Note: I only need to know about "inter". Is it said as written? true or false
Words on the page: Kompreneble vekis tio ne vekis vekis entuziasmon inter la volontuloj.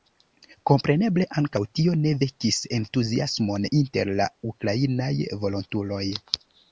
true